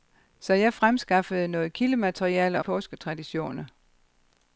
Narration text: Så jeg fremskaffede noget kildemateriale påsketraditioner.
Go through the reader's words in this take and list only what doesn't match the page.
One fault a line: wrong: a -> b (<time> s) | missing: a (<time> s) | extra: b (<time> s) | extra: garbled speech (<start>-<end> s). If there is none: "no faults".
no faults